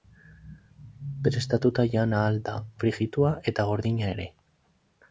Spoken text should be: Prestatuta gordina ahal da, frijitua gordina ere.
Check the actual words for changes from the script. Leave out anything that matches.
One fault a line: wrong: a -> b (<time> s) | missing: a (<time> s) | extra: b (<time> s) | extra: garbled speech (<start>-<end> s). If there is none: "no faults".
wrong: gordina -> jan (2.0 s)
extra: eta (3.5 s)